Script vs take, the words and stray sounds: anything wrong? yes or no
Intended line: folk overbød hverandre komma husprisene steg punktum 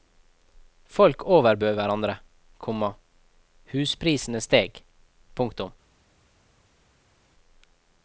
no